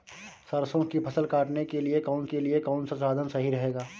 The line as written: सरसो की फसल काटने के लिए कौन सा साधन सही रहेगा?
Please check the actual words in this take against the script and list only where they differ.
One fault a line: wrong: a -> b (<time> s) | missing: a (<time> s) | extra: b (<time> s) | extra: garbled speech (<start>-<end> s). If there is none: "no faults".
extra: के लिए कौन (2.2 s)